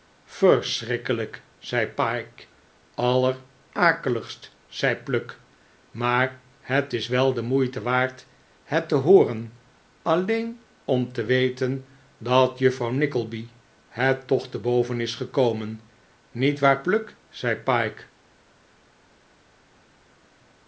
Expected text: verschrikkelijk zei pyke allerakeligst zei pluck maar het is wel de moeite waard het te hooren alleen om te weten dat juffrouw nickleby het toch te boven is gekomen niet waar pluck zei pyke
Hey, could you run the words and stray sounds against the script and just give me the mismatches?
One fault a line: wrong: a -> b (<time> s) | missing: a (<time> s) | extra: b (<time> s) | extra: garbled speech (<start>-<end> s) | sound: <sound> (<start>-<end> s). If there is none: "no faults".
no faults